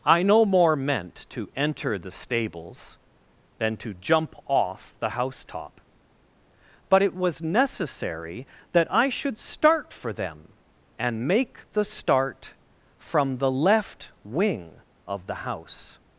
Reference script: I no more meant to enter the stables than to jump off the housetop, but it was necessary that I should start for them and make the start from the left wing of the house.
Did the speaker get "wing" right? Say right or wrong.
right